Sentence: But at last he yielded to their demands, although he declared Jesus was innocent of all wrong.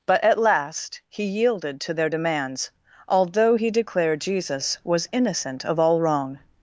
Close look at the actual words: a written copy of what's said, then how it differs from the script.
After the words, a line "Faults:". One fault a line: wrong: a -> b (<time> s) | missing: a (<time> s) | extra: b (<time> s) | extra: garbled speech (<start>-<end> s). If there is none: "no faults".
But at last he yielded to their demands, although he declared Jesus was innocent of all wrong.
Faults:
no faults